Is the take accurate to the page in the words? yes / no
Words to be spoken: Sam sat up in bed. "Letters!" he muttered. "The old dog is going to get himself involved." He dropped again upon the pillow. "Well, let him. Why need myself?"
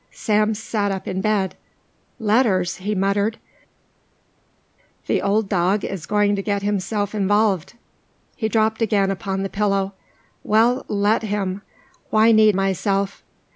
yes